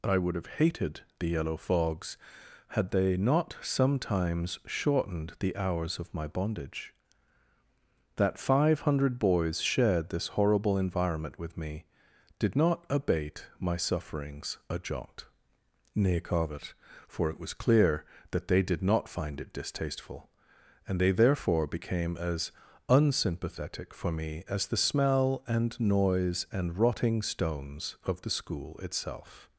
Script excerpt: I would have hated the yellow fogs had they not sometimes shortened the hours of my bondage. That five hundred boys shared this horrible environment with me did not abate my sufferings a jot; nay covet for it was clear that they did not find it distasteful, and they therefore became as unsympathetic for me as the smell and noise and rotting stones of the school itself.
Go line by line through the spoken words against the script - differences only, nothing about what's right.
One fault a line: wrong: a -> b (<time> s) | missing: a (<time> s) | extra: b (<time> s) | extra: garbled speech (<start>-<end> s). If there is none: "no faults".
no faults